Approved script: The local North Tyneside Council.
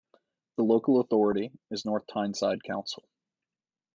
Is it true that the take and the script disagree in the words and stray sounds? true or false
true